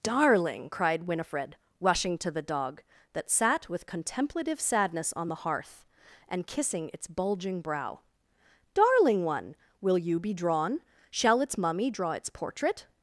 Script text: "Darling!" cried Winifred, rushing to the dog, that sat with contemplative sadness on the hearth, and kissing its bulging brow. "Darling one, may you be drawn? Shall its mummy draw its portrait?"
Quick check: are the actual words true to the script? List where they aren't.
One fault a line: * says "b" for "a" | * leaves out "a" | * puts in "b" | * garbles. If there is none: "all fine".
* says "will" for "may"